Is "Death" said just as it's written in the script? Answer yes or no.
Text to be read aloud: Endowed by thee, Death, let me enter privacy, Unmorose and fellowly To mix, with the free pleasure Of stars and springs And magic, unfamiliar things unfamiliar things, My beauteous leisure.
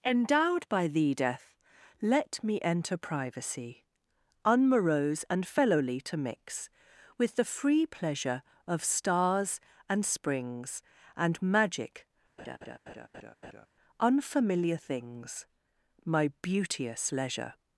yes